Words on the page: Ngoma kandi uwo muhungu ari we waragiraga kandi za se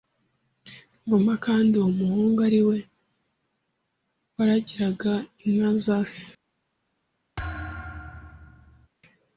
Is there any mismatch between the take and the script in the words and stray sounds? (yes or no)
yes